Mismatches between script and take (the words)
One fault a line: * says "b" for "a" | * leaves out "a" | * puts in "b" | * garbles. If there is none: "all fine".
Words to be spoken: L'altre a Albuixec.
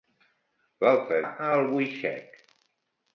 all fine